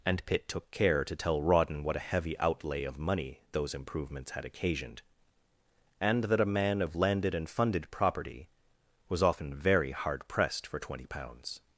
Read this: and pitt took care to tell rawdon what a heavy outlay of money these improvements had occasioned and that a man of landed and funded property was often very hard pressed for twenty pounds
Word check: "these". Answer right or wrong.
wrong